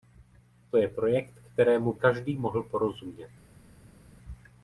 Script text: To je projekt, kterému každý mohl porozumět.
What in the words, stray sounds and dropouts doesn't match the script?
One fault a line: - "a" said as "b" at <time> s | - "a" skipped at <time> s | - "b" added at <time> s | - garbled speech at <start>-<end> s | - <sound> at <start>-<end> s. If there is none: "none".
none